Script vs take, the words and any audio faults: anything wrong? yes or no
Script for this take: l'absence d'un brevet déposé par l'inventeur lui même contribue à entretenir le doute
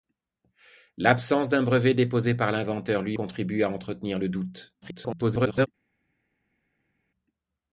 yes